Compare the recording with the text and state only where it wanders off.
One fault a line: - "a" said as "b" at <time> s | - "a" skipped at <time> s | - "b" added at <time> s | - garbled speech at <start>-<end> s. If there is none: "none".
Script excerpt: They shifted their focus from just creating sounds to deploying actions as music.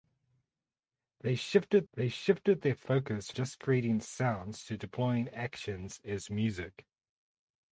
- "they shifted" added at 1.9 s
- "from" skipped at 3.3 s